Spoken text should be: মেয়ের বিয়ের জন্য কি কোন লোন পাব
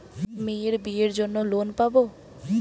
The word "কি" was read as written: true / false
false